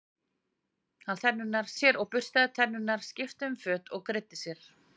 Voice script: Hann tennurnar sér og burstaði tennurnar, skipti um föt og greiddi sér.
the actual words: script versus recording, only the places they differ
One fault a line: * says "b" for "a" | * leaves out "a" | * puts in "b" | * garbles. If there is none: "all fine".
all fine